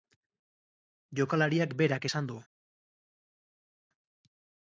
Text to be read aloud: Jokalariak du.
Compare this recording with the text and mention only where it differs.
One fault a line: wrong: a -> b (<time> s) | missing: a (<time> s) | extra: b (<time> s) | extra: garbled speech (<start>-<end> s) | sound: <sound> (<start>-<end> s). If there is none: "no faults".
extra: berak esan (1.8 s)